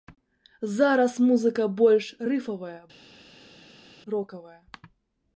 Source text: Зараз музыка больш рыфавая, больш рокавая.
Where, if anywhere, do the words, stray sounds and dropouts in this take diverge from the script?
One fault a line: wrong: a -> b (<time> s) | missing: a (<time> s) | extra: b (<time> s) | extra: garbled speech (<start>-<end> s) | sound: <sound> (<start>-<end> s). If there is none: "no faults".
missing: больш (2.8 s)